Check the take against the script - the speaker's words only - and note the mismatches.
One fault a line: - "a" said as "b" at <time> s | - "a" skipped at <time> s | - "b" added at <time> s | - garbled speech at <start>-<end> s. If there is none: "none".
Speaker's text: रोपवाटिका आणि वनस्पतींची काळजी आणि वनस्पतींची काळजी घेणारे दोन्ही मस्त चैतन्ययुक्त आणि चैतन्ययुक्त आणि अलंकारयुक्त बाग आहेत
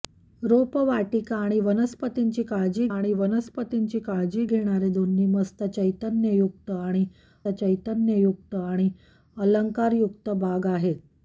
none